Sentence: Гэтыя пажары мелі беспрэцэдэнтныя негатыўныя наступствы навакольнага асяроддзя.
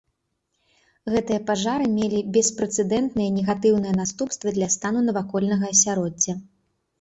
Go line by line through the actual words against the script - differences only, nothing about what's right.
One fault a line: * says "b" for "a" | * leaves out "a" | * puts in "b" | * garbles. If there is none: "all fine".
* puts in "для стану"